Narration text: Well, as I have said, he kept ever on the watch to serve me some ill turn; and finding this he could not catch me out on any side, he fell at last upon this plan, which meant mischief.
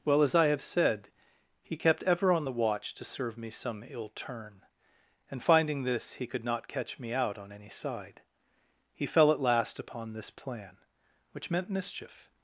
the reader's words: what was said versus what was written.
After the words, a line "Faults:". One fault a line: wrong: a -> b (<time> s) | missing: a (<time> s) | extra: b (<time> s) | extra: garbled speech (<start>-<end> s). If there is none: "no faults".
Well, as I have said, he kept ever on the watch to serve me some ill turn; and finding this he could not catch me out on any side, he fell at last upon this plan, which meant mischief.
Faults:
no faults